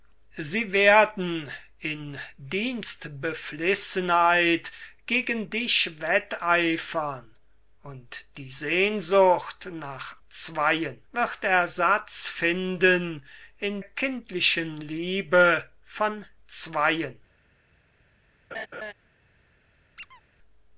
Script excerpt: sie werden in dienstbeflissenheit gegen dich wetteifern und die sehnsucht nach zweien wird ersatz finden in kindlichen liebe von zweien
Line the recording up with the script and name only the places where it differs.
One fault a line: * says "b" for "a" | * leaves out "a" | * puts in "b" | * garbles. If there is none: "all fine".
all fine